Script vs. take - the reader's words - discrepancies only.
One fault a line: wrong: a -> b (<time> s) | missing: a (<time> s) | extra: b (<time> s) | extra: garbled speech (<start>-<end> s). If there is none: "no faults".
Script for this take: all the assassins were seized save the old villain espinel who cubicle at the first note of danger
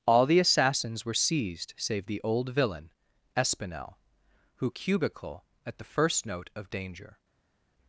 no faults